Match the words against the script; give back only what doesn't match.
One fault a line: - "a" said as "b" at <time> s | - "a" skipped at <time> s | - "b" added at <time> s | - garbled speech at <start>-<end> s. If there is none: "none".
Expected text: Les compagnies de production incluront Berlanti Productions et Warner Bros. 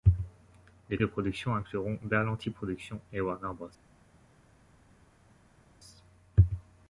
- "compagnies" skipped at 1.0 s